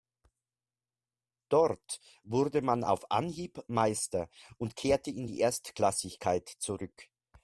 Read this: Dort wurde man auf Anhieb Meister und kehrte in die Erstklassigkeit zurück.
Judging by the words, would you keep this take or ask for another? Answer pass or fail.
pass